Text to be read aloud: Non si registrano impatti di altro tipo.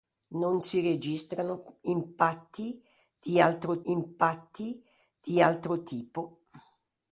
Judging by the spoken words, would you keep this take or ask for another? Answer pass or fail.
fail